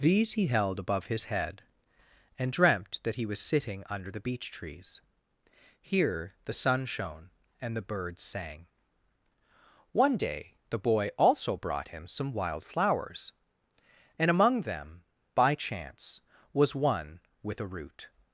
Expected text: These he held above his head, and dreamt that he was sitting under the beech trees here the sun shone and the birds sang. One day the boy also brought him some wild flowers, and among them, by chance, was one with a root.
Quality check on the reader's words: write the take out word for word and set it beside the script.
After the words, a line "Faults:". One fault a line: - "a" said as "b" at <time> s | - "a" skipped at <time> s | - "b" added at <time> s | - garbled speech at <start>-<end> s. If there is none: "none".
These he held above his head, and dreamt that he was sitting under the beech trees here the sun shone and the birds sang. One day the boy also brought him some wild flowers, and among them, by chance, was one with a root.
Faults:
none